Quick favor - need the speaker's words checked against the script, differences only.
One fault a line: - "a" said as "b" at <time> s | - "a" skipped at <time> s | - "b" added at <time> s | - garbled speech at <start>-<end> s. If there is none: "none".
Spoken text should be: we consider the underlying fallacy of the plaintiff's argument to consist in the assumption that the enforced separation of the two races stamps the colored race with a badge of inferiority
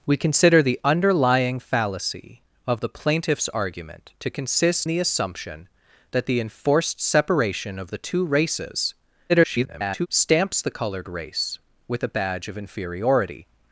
- "in" skipped at 4.9 s
- garbled speech at 9.3-10.1 s